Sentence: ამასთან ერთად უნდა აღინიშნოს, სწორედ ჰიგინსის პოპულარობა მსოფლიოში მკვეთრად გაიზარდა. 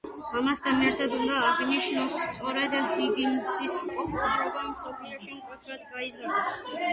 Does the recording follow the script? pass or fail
pass